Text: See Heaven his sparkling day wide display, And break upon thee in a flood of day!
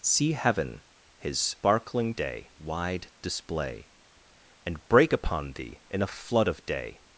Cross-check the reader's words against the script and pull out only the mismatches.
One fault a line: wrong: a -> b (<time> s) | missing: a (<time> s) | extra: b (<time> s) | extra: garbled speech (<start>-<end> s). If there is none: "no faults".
no faults